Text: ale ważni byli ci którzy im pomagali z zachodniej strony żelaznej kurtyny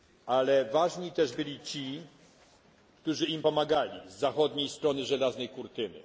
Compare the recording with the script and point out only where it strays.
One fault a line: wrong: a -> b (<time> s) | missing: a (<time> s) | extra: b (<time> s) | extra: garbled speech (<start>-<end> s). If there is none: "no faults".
extra: też (1.1 s)